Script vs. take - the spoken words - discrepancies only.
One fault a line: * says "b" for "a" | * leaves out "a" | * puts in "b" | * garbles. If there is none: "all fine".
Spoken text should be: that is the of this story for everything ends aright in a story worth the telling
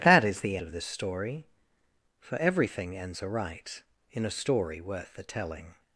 all fine